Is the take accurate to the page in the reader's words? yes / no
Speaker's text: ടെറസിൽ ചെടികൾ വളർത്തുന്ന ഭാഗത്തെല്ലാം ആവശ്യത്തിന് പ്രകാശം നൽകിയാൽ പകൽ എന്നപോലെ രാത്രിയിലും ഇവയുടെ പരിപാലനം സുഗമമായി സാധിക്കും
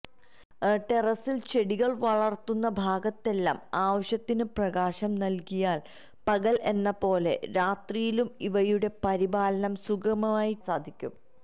yes